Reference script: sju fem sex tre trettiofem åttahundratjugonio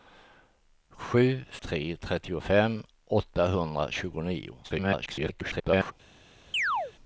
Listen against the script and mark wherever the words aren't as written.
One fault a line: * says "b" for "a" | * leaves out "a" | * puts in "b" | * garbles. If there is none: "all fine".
* leaves out "fem sex"
* garbles